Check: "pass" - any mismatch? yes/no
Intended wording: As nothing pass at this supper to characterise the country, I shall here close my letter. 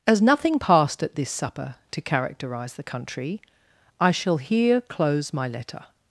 yes